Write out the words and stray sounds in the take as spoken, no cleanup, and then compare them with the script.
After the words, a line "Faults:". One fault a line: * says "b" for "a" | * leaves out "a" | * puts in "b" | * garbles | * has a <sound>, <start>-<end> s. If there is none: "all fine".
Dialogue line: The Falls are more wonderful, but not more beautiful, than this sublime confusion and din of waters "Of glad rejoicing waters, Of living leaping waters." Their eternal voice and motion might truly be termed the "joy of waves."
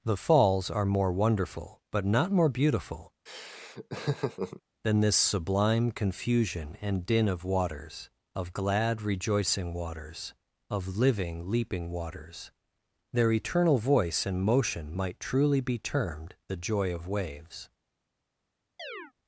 The Falls are more wonderful, but not more beautiful, than this sublime confusion and din of waters "Of glad rejoicing waters, Of living leaping waters." Their eternal voice and motion might truly be termed the "joy of waves."
Faults:
* has a laugh, 3.3-4.6 s
* has a chirp, 18.8-19.1 s